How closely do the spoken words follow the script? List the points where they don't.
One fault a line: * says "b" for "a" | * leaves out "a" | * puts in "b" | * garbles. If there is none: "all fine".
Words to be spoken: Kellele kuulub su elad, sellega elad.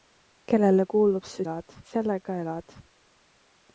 all fine